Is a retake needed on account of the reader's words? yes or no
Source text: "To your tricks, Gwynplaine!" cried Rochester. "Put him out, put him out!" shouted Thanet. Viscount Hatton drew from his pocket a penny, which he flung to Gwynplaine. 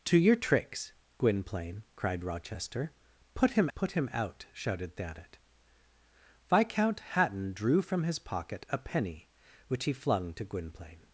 yes